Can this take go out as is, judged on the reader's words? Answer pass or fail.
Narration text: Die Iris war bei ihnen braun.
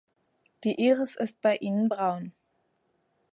fail